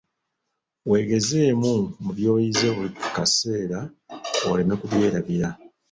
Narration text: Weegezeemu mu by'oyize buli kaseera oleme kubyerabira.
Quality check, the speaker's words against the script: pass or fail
pass